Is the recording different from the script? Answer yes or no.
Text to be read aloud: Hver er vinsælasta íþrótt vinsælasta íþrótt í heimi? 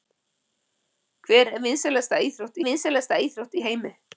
no